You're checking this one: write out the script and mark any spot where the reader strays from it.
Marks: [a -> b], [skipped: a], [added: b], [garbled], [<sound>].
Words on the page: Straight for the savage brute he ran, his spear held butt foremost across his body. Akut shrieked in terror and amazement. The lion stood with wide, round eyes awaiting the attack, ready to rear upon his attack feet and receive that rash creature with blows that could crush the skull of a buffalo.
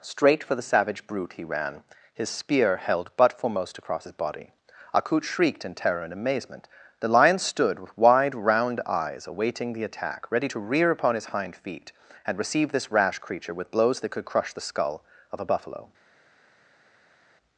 Straight for the savage brute he ran, his spear held butt foremost across his body. Akut shrieked in terror and amazement. The lion stood with wide, round eyes awaiting the attack, ready to rear upon his [attack -> hind] feet and receive [that -> this] rash creature with blows that could crush the skull of a buffalo.